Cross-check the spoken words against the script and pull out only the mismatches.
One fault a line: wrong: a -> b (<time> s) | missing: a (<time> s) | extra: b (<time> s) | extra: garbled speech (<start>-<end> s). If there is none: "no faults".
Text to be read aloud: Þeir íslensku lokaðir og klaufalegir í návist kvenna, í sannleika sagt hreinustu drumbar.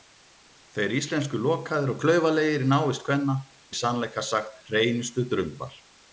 no faults